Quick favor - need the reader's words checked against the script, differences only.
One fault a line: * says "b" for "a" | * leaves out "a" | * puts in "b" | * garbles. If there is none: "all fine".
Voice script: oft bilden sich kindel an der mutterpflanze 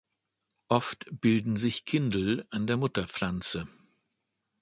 all fine